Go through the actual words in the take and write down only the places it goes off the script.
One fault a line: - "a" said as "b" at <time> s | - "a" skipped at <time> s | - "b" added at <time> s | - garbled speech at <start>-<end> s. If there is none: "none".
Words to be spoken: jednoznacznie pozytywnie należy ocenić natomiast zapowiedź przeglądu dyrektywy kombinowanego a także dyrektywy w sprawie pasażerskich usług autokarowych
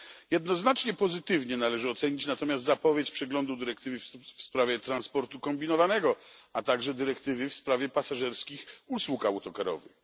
- "w sprawie transportu" added at 4.0 s